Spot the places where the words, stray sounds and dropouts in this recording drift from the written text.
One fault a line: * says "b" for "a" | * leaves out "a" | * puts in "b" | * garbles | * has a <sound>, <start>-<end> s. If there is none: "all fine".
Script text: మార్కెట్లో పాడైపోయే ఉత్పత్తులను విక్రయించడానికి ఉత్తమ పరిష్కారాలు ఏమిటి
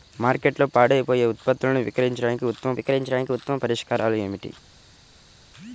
* puts in "విక్రయించడానికి ఉత్తమ"